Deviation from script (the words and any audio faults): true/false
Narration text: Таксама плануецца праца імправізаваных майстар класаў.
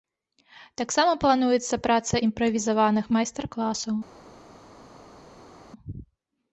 false